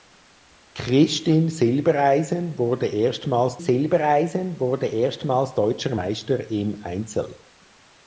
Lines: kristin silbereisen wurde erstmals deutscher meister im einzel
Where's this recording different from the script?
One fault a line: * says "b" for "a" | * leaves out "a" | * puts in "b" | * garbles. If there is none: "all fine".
* puts in "silbereisen wurde erstmals"